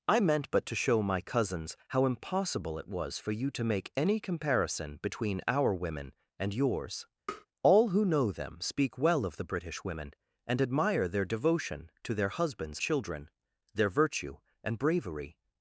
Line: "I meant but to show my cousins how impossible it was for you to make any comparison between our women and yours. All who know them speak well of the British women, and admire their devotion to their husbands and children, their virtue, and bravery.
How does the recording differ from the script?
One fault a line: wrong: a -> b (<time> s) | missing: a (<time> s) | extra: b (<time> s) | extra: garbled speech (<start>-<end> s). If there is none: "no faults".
missing: and (12.8 s)